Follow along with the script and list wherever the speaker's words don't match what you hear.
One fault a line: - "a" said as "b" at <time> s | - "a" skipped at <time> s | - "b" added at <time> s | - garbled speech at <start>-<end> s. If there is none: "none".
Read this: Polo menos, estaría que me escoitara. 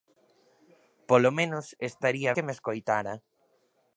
none